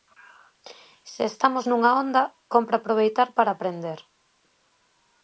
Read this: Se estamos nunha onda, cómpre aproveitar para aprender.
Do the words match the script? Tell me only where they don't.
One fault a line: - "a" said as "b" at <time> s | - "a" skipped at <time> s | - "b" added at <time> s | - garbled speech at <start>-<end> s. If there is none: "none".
none